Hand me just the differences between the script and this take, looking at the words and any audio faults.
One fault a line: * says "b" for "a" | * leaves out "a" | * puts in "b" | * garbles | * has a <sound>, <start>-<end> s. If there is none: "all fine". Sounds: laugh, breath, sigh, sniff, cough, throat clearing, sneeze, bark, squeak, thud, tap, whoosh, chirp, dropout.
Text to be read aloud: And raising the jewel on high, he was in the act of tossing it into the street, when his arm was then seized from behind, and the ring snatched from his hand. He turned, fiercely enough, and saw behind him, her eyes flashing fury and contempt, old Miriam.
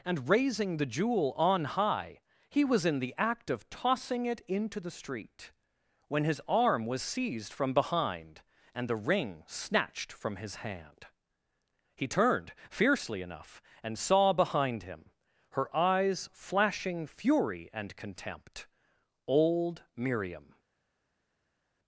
* leaves out "then"